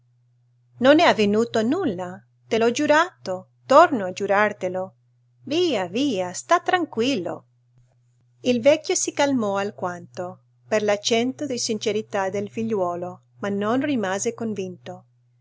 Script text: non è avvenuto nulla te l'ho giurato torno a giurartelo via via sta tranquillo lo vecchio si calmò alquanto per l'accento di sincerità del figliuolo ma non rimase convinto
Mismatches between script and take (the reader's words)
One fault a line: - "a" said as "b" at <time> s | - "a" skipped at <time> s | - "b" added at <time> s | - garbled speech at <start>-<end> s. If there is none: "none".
- "lo" said as "il" at 8.4 s